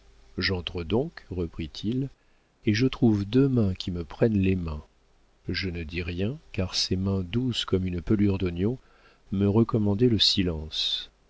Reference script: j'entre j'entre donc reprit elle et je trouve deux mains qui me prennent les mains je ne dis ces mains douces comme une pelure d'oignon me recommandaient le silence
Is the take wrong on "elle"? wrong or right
wrong